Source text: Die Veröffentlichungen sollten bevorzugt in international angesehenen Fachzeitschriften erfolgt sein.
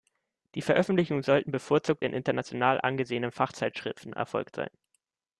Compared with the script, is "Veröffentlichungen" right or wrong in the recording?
right